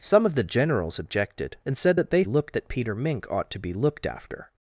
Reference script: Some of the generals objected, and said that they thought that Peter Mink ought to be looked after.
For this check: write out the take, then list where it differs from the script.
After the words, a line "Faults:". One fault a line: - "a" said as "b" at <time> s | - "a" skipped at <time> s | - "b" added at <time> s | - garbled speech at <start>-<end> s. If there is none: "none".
Some of the generals objected, and said that they looked that Peter Mink ought to be looked after.
Faults:
- "thought" said as "looked" at 2.2 s